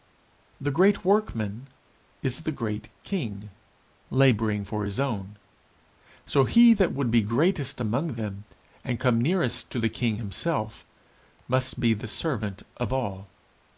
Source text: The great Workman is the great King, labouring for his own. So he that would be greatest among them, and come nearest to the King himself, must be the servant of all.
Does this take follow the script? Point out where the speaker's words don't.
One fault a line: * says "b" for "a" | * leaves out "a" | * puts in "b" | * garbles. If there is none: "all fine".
all fine